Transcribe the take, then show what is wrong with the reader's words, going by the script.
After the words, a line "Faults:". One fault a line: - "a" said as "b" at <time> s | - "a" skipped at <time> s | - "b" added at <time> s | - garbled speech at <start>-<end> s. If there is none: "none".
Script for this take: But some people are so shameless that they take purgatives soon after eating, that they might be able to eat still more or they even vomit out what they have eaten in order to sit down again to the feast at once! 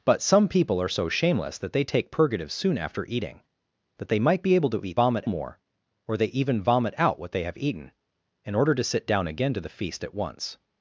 But some people are so shameless that they take purgatives soon after eating, that they might be able to eat vomit more or they even vomit out what they have eaten in order to sit down again to the feast at once!
Faults:
- "still" said as "vomit" at 4.9 s